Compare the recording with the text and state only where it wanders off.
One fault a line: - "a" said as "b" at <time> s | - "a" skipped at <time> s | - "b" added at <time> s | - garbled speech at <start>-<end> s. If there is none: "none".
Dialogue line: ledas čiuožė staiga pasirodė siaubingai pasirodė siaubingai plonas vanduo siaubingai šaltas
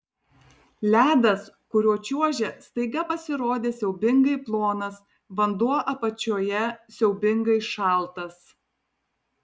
- "kuriuo" added at 1.8 s
- "pasirodė siaubingai" skipped at 4.4 s
- "apačioje" added at 5.9 s